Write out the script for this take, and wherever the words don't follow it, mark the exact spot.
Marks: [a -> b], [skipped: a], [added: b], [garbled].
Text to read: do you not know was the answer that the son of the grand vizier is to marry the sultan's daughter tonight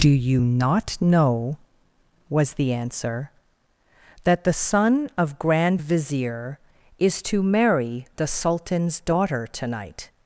do you not know was the answer that the son of [skipped: the] grand vizier is to marry the sultan's daughter tonight